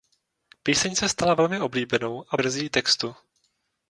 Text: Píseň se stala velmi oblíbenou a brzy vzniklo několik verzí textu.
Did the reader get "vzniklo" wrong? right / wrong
wrong